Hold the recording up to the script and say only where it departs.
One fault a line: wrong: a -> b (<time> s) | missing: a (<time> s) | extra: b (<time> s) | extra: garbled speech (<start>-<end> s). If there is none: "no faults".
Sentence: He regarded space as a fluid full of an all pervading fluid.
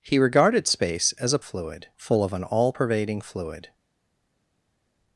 no faults